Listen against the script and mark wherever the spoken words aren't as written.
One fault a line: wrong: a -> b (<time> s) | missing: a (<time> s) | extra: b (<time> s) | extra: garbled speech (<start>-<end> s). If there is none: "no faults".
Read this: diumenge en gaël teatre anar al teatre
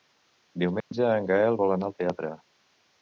wrong: teatre -> vol (1.6 s)